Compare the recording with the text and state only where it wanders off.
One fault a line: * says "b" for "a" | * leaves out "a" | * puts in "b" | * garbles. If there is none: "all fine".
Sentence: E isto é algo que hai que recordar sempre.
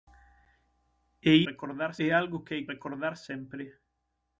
* says "recordar" for "isto"
* leaves out "que"